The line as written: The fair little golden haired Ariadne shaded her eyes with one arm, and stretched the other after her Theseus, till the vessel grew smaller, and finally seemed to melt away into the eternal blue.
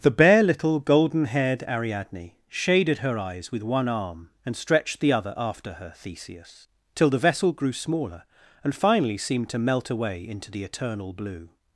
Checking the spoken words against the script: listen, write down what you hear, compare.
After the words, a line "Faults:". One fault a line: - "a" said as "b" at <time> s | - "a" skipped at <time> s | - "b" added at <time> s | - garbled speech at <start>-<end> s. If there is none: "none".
The bare little golden haired Ariadne shaded her eyes with one arm, and stretched the other after her Theseus, till the vessel grew smaller, and finally seemed to melt away into the eternal blue.
Faults:
- "fair" said as "bare" at 0.1 s